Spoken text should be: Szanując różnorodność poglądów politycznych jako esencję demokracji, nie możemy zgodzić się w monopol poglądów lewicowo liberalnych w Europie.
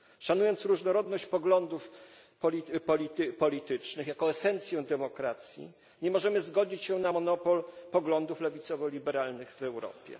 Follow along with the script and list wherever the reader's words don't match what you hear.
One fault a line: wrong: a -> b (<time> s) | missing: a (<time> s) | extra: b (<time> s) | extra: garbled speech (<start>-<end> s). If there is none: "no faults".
wrong: w -> na (7.0 s)